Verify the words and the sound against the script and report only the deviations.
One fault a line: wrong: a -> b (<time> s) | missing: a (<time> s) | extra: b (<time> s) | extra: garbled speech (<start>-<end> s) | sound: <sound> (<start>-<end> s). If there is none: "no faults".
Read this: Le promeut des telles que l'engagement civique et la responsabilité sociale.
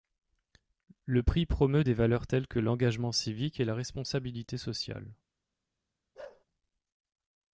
extra: prix (1.2 s)
extra: valeurs (1.9 s)
sound: bark (6.1-6.4 s)